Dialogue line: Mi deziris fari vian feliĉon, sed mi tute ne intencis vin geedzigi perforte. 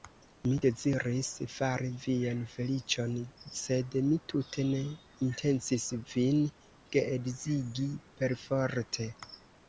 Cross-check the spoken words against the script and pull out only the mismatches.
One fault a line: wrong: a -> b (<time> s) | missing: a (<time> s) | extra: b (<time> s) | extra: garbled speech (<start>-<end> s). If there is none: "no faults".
no faults